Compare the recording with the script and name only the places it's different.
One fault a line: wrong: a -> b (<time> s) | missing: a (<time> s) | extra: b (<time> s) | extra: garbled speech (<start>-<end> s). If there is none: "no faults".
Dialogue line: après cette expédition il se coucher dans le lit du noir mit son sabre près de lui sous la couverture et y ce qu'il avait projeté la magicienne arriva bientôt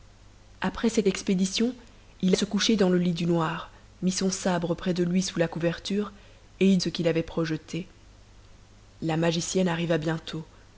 no faults